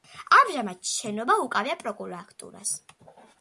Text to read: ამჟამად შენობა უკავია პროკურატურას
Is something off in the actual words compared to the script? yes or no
no